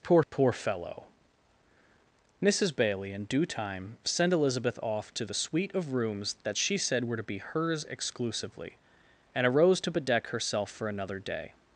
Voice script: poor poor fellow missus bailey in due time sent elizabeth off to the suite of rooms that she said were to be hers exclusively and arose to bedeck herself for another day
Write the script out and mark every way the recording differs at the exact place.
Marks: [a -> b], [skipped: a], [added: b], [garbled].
poor poor fellow missus bailey in due time sent elizabeth off to the suite of rooms that she said were to be hers exclusively and arose to bedeck herself for another day